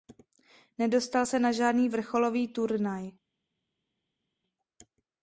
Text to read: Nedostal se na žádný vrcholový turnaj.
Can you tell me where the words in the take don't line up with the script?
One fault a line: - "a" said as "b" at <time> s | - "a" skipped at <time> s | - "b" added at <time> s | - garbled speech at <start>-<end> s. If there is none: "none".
none